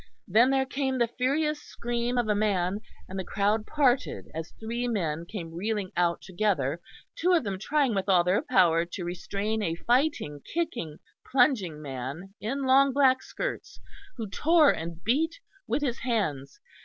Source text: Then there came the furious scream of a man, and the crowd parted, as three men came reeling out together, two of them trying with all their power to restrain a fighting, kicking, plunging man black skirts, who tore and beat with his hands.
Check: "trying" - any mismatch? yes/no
no